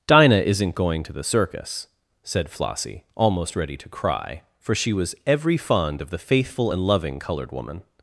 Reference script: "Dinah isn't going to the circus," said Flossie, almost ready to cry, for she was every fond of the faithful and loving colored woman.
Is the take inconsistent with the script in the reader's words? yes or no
no